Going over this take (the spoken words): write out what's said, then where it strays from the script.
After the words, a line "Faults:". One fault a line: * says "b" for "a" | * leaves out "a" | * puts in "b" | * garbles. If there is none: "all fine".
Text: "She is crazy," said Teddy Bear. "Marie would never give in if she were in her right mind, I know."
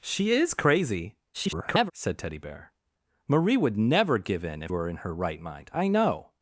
"She is crazy," [garbled] said Teddy Bear. "Marie would never give in if were in her right mind, I know."
Faults:
* garbles
* leaves out "she"